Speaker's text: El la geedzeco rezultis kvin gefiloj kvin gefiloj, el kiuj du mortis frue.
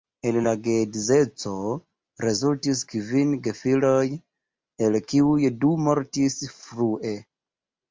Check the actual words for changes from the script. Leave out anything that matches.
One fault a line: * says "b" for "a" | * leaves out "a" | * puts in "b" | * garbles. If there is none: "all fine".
* leaves out "kvin gefiloj"